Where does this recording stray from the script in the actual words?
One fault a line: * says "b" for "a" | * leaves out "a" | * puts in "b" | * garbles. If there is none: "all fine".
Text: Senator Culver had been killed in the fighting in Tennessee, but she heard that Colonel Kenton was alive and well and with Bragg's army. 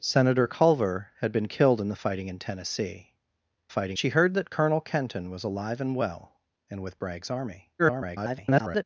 * says "fighting" for "but"
* garbles